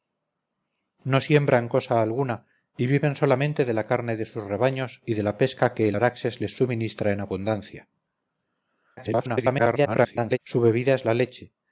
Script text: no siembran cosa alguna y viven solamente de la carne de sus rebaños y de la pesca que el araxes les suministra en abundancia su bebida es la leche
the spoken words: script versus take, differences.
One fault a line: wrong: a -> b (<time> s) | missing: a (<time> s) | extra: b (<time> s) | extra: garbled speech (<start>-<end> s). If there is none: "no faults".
extra: garbled speech (9.0-10.4 s)